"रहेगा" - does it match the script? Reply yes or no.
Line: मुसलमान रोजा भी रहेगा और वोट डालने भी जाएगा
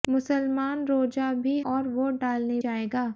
no